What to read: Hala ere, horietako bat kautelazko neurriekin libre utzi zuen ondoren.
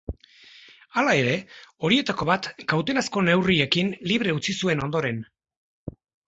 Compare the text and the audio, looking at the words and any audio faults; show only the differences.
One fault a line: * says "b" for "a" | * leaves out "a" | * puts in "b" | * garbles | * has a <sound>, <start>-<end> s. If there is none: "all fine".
all fine